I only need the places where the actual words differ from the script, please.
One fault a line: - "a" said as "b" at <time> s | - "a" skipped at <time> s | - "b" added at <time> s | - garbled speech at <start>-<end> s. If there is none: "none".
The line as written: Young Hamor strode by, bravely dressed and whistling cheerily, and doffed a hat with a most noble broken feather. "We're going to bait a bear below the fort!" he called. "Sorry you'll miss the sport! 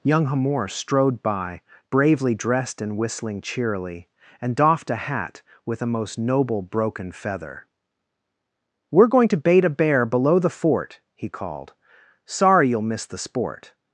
none